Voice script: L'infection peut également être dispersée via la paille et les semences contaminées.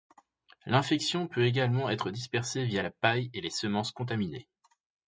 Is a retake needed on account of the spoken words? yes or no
no